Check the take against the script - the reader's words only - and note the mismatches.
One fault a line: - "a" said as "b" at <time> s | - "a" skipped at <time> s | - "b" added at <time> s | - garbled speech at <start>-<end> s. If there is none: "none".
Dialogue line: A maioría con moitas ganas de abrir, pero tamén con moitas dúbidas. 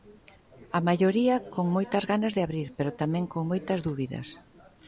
none